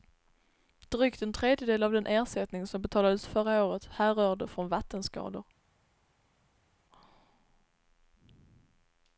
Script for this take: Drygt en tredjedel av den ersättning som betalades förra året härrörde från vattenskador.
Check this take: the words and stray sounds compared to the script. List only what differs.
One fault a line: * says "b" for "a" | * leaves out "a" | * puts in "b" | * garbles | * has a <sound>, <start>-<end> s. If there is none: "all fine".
all fine